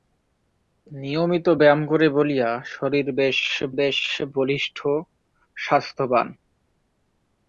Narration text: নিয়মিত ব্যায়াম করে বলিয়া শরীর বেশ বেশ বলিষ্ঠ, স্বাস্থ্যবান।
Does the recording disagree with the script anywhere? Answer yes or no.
no